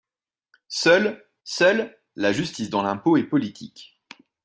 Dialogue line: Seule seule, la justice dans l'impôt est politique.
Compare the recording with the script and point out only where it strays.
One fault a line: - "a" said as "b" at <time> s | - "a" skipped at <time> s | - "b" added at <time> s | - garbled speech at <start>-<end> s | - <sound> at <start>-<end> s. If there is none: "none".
none